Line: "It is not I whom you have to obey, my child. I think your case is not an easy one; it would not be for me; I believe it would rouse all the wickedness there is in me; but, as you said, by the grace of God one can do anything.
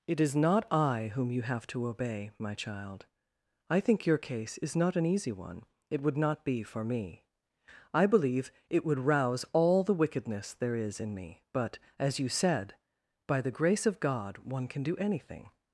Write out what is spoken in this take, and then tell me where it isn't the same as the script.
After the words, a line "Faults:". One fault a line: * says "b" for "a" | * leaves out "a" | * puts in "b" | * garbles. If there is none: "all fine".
"It is not I whom you have to obey, my child. I think your case is not an easy one; it would not be for me; I believe it would rouse all the wickedness there is in me; but, as you said, by the grace of God one can do anything.
Faults:
all fine